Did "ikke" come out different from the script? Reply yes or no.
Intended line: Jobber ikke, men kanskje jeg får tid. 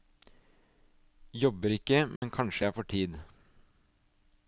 no